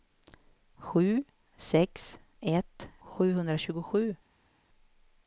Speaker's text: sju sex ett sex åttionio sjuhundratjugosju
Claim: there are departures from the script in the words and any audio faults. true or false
true